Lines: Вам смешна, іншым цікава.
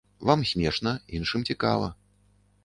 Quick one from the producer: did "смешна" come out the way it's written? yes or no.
yes